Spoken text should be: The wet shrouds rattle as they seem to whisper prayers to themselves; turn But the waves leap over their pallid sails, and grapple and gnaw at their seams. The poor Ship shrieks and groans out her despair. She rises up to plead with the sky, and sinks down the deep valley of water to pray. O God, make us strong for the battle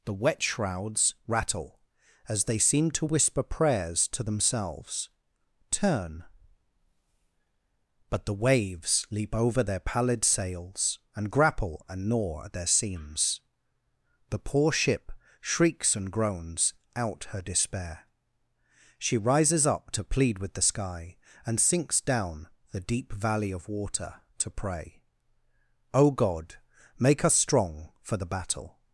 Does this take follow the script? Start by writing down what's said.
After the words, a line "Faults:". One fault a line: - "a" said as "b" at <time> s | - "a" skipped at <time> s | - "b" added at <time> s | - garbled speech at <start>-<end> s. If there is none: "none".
The wet shrouds rattle as they seem to whisper prayers to themselves; turn But the waves leap over their pallid sails, and grapple and gnaw at their seams. The poor Ship shrieks and groans out her despair. She rises up to plead with the sky, and sinks down the deep valley of water to pray. O God, make us strong for the battle
Faults:
none